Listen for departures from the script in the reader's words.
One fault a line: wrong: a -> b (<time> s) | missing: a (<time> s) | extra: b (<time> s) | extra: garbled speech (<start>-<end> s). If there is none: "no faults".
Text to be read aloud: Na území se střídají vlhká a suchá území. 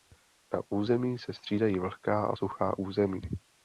no faults